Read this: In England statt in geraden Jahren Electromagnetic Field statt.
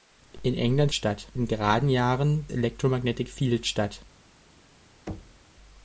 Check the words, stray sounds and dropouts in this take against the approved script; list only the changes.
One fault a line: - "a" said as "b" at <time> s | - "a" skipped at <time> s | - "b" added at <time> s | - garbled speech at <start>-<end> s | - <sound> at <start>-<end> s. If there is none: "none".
- thud at 5.1-5.4 s